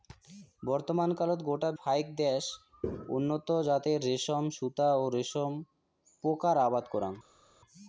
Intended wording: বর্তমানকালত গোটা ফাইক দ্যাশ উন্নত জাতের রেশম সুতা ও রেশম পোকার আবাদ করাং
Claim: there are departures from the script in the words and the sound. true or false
false